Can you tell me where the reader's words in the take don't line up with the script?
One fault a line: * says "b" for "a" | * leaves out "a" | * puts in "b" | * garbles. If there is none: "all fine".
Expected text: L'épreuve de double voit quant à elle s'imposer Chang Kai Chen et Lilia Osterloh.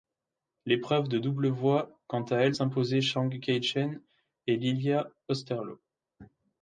all fine